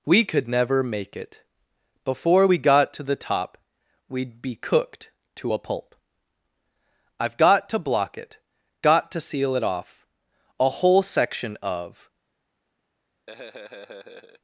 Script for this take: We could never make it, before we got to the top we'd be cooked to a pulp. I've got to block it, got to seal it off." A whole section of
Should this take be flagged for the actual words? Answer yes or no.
no